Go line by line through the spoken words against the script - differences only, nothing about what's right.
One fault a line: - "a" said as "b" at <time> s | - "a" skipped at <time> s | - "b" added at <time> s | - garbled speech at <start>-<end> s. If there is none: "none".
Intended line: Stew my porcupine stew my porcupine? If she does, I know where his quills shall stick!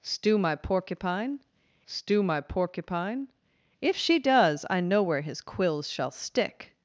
none